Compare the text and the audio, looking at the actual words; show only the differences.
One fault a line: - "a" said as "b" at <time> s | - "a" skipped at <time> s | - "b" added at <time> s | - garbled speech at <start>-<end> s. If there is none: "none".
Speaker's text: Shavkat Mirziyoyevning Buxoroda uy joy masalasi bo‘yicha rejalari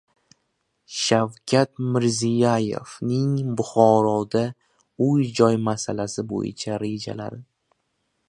none